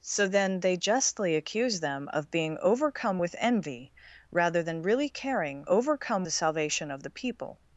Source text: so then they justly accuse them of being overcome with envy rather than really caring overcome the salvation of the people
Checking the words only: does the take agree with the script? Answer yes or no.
yes